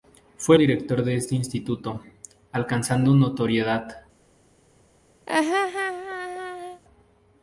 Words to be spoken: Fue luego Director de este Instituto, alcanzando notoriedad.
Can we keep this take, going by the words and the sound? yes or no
no